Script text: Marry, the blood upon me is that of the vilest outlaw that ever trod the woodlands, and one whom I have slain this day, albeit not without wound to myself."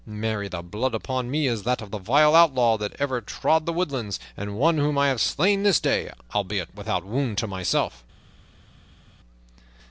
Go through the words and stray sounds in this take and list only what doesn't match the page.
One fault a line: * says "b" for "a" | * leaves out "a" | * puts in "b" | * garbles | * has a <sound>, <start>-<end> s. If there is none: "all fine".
* leaves out "not"